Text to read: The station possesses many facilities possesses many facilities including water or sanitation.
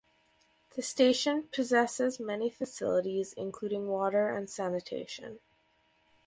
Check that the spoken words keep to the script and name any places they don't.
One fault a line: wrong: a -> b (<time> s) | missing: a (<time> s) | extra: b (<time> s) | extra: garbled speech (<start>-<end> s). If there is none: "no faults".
missing: possesses many facilities (3.4 s)
wrong: or -> and (4.3 s)